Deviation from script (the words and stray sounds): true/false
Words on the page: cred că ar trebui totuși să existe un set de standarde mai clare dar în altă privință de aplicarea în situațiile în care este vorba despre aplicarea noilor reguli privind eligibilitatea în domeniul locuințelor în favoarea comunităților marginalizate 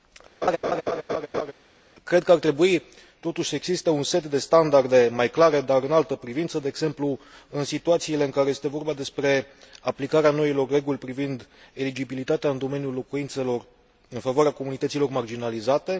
true